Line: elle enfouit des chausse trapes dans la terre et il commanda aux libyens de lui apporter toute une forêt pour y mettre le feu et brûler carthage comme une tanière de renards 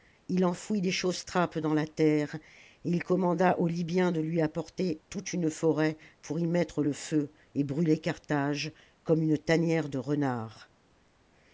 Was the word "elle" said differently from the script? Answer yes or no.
yes